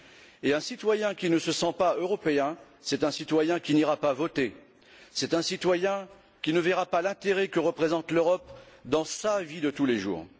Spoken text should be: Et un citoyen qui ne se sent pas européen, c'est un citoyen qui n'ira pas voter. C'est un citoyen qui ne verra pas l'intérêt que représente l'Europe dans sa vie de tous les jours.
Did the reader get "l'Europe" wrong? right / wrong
right